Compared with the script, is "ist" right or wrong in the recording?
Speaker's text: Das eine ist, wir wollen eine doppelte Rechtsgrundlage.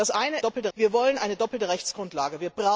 wrong